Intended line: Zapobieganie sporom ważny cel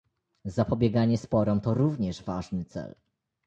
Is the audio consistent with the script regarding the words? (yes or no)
no